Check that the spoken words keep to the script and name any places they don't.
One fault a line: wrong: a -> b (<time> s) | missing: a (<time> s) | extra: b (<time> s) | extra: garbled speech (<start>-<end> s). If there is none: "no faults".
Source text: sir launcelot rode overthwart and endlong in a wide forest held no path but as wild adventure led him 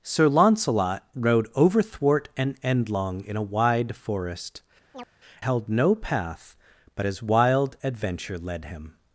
no faults